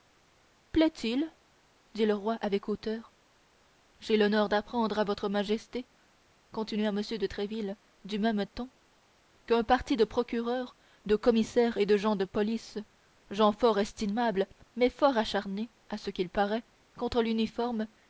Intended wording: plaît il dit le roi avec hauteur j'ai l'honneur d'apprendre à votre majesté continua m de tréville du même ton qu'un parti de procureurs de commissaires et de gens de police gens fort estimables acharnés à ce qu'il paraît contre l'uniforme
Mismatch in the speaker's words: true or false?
true